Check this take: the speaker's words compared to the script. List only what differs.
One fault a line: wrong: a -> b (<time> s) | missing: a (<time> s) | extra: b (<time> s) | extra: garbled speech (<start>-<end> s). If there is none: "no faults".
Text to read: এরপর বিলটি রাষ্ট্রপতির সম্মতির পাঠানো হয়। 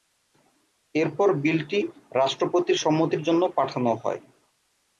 extra: জন্য (3.2 s)